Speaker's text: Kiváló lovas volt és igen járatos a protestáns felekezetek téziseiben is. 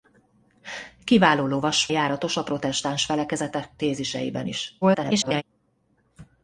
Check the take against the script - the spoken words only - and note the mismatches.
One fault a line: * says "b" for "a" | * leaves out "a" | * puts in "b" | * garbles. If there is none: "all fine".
* leaves out "volt és igen"
* garbles